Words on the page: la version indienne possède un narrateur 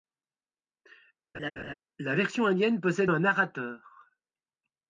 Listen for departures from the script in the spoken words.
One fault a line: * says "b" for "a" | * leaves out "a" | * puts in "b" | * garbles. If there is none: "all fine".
all fine